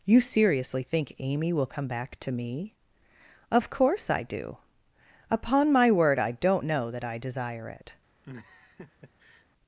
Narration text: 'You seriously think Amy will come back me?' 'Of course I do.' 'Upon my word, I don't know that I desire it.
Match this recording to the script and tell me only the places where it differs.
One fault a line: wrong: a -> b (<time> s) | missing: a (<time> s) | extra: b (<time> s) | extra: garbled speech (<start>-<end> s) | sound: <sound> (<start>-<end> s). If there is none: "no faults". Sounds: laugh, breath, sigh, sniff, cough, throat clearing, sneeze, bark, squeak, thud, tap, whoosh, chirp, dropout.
extra: to (2.2 s)
sound: laugh (8.2-9.5 s)